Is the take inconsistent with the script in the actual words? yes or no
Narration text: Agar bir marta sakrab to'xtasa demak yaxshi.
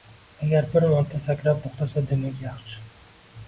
no